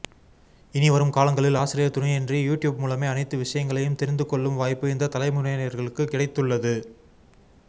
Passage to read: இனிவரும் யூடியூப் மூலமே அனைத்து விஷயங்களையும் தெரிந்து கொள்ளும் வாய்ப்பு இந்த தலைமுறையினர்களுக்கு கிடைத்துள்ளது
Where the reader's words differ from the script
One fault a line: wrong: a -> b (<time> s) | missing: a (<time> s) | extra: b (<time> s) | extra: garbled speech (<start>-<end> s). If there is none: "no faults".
extra: காலங்களில் ஆசிரியர் துணையின்றி (1.1 s)